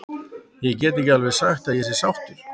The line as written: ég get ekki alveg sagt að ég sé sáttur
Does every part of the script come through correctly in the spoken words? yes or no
yes